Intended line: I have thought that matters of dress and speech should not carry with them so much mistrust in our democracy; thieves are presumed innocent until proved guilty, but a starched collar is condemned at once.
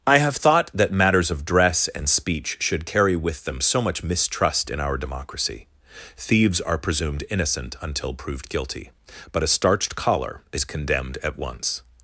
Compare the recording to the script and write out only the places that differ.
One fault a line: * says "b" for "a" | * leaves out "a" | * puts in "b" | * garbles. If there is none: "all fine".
* leaves out "not"